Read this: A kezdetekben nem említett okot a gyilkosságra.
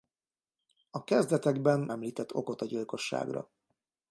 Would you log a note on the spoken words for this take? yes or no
yes